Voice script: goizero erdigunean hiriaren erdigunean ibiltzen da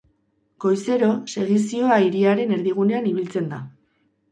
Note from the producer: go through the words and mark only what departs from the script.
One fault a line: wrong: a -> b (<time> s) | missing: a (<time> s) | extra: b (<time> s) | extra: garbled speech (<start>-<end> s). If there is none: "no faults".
wrong: erdigunean -> segizioa (1.3 s)